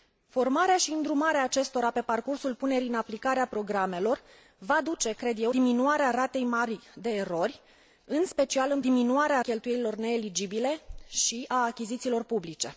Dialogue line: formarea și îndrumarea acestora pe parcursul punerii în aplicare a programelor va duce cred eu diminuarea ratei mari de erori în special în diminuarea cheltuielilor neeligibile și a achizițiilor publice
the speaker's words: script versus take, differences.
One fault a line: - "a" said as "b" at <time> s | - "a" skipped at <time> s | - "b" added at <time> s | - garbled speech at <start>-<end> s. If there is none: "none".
none